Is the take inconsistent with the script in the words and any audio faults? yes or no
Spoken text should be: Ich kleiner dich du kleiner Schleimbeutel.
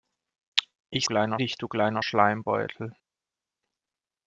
no